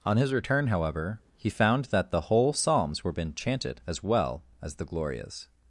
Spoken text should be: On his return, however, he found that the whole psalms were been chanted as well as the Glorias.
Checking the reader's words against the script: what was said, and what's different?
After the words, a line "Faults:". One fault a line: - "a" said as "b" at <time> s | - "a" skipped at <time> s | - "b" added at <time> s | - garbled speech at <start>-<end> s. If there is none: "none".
On his return, however, he found that the whole psalms were been chanted as well as the Glorias.
Faults:
none